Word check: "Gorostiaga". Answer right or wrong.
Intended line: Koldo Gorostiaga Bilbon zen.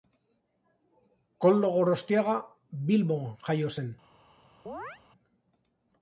right